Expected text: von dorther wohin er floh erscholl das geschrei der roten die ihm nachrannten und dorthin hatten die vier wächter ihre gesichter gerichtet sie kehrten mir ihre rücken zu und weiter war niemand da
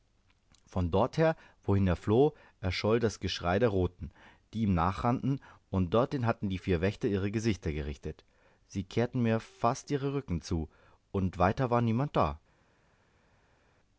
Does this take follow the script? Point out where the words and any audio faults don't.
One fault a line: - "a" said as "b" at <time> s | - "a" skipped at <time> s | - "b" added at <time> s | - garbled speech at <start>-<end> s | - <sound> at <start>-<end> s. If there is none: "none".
- "fast" added at 9.4 s